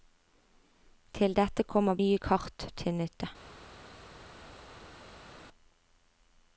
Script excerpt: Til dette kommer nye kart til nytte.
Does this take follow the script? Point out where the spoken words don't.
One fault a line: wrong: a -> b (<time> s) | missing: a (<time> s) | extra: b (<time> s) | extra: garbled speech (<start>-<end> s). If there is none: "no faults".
no faults